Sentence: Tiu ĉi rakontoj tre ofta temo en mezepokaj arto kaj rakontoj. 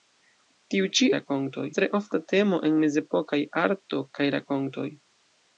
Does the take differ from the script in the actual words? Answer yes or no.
no